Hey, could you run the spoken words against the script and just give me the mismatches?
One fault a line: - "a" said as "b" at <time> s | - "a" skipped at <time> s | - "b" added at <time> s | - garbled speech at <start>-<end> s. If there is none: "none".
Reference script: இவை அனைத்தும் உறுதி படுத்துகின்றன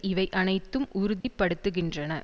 none